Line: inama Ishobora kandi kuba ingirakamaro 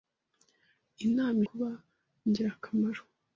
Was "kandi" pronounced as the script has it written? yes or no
no